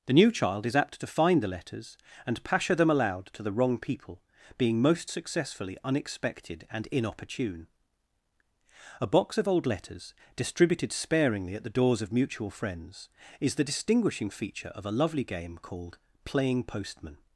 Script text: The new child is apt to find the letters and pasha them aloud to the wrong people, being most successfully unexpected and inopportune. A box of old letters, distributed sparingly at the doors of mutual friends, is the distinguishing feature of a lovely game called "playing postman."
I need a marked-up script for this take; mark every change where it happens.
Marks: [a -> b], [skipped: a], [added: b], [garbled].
The new child is apt to find the letters and pasha them aloud to the wrong people, being most successfully unexpected and inopportune. A box of old letters, distributed sparingly at the doors of mutual friends, is the distinguishing feature of a lovely game called "playing postman."